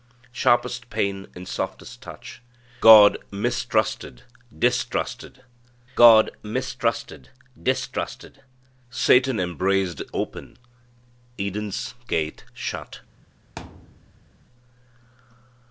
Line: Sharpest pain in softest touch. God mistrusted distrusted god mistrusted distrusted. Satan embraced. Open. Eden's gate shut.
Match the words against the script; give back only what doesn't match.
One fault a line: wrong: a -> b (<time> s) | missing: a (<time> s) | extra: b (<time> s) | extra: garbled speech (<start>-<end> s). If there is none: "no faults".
no faults